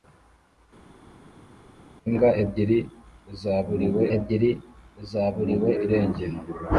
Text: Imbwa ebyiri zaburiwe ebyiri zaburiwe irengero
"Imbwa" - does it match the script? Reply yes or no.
yes